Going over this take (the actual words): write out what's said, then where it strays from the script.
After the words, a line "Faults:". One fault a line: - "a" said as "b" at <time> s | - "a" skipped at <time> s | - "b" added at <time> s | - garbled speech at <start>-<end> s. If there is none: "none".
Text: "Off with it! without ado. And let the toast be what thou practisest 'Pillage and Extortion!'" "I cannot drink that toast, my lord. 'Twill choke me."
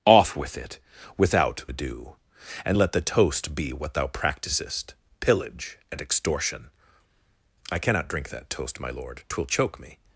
"Off with it! without ado. And let the toast be what thou practisest 'Pillage and Extortion!'" "I cannot drink that toast, my lord. 'Twill choke me."
Faults:
none